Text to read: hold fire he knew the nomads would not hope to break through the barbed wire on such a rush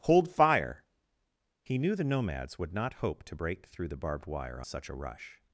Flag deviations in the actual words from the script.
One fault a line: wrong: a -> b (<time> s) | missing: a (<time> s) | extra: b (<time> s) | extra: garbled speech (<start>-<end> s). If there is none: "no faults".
missing: on (4.6 s)